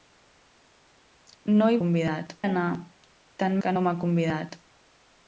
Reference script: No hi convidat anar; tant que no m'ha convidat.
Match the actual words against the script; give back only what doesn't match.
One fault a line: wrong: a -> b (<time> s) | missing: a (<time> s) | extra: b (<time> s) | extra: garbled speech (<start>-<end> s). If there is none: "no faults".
no faults